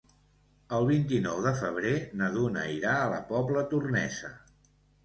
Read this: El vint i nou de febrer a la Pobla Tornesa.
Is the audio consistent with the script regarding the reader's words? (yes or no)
no